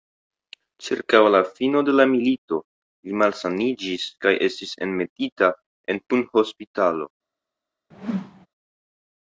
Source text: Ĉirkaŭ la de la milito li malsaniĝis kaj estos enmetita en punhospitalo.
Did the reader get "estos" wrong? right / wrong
wrong